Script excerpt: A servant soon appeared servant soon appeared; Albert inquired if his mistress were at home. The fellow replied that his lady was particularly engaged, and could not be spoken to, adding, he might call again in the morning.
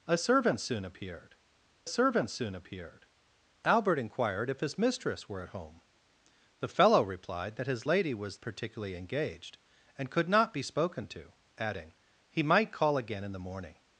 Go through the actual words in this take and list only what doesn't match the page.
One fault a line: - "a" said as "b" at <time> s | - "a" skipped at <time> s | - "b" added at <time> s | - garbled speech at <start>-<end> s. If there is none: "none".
none